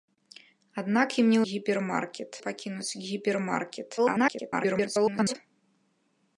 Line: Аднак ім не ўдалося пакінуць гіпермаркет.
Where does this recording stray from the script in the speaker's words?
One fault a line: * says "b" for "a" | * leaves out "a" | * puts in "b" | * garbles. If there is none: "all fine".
* says "гіпермаркет" for "ўдалося"
* garbles